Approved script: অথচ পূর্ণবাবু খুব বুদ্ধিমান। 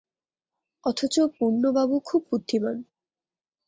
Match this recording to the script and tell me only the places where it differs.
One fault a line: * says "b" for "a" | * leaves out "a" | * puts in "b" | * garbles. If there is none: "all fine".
all fine